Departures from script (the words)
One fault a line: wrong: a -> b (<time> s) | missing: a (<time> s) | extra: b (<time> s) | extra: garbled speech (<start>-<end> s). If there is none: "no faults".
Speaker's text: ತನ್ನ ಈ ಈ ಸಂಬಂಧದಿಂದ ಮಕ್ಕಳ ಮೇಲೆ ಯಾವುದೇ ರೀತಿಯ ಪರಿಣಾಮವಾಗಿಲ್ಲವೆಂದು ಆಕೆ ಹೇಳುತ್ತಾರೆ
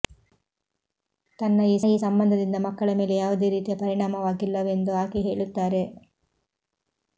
no faults